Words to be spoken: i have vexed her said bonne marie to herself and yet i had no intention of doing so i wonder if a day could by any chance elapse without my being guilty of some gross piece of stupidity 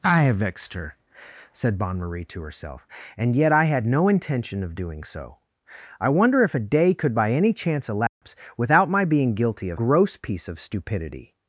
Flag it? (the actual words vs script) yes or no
yes